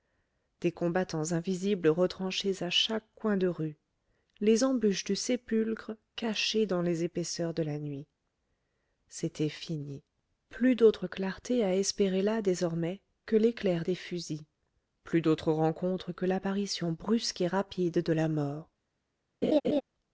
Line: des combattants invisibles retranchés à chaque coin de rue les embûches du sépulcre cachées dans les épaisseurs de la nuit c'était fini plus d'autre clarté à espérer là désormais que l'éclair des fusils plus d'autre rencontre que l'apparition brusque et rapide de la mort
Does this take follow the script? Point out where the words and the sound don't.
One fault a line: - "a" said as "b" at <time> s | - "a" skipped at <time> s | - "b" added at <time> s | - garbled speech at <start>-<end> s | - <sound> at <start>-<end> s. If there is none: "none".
- laugh at 19.4-19.8 s